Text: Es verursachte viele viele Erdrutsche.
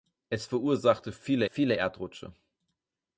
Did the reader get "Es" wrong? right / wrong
right